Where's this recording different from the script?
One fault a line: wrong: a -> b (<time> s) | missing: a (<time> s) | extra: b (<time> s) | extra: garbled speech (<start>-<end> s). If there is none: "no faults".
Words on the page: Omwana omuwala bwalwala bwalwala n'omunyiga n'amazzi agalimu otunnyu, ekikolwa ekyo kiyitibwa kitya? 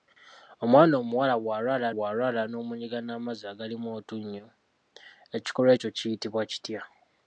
no faults